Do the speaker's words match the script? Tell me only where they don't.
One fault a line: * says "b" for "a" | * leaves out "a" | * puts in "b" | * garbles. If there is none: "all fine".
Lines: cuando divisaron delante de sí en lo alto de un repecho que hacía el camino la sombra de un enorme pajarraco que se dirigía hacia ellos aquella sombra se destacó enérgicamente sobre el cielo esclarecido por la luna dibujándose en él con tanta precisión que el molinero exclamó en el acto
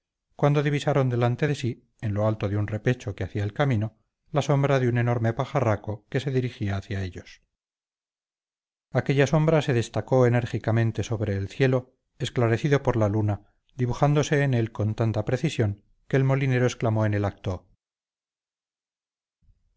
all fine